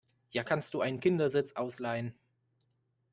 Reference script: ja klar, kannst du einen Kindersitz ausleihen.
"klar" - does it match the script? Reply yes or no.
no